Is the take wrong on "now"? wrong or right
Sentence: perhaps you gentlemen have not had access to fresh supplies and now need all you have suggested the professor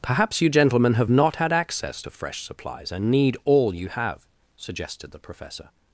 wrong